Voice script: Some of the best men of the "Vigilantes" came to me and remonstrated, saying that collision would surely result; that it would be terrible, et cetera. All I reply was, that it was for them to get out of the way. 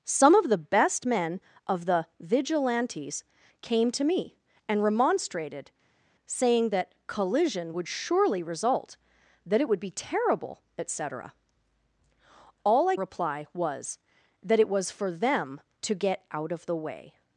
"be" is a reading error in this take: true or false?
false